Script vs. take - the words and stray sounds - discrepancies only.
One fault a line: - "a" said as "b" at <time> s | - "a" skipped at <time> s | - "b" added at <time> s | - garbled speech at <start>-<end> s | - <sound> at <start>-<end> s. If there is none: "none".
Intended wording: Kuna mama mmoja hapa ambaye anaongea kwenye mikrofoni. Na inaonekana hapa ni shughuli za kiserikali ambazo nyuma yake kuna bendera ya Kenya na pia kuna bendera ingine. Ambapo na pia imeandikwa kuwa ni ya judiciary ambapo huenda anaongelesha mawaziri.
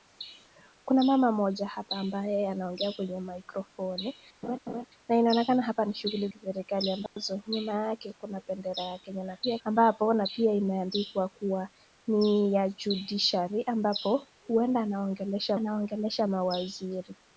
- laugh at 4.4-4.8 s
- "za" skipped at 6.3 s
- dropout at 7.1-7.2 s
- "kuna bendera ingine" skipped at 9.6 s
- "anaongelesha" added at 15.5 s